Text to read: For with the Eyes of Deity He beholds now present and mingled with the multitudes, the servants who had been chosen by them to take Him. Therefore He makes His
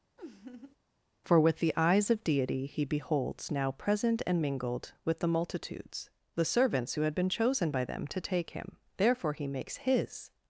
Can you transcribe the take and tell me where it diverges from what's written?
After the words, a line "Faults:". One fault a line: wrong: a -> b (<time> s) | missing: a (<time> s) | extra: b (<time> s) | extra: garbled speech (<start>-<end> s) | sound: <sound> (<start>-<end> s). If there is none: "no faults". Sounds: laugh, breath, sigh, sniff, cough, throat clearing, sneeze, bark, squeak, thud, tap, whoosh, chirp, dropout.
For with the Eyes of Deity He beholds now present and mingled with the multitudes, the servants who had been chosen by them to take Him. Therefore He makes His
Faults:
sound: laugh (0.2-0.8 s)